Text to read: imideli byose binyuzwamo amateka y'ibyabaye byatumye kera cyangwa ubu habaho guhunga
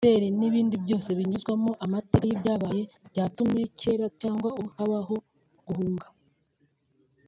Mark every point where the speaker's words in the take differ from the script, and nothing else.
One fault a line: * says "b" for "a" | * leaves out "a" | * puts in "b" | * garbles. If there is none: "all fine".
* puts in "n'ibindi"